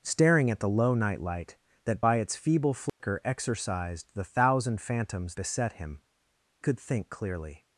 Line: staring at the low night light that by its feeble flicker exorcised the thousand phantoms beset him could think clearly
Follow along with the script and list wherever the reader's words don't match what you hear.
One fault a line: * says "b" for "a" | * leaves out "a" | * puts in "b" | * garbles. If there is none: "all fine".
all fine